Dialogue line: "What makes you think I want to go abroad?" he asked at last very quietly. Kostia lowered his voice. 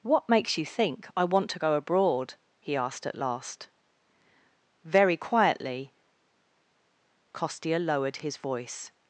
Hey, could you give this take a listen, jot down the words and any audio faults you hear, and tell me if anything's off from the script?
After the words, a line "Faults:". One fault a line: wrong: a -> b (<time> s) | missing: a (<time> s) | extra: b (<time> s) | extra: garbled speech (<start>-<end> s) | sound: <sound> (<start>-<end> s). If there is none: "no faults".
"What makes you think I want to go abroad?" he asked at last very quietly. Kostia lowered his voice.
Faults:
no faults